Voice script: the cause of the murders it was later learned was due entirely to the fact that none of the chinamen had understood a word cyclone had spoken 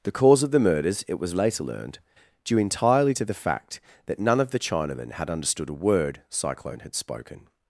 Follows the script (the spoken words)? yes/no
no